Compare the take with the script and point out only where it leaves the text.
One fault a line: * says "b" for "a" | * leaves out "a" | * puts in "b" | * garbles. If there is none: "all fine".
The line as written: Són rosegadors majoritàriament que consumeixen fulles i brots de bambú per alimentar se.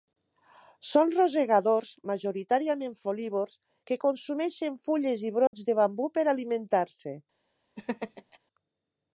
* puts in "folívors"